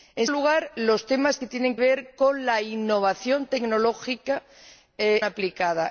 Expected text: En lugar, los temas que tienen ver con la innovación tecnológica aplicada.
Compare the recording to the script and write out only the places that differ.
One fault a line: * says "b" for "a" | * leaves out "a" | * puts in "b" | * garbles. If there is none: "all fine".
all fine